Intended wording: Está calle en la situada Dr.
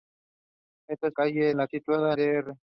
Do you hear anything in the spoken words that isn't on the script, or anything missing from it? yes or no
no